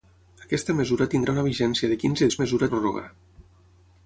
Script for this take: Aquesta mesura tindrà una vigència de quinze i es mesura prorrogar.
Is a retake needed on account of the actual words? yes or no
no